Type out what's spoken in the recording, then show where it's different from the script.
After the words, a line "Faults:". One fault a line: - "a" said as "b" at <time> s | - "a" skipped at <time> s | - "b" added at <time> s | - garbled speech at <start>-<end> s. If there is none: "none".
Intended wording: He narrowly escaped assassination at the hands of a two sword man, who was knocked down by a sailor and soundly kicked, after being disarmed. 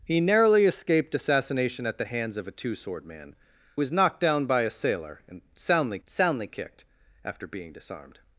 He narrowly escaped assassination at the hands of a two sword man, was knocked down by a sailor and soundly soundly kicked, after being disarmed.
Faults:
- "who" skipped at 3.4 s
- "soundly" added at 6.1 s